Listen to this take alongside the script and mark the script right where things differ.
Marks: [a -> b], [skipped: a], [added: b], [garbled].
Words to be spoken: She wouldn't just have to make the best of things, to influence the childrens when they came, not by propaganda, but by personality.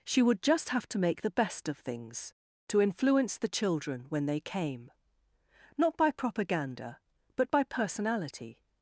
She [wouldn't -> would] just have to make the best of things, to influence the [childrens -> children] when they came, not by propaganda, but by personality.